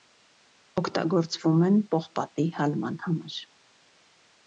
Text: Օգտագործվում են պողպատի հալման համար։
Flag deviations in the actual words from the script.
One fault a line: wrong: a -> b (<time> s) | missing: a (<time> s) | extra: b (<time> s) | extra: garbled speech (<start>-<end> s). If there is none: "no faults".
no faults